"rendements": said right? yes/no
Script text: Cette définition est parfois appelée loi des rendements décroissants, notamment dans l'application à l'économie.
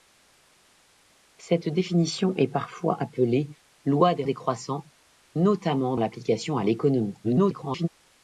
no